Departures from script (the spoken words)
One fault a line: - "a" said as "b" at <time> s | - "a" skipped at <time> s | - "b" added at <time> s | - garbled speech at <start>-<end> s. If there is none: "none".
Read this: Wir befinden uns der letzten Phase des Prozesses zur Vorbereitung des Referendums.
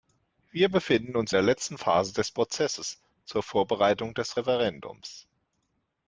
none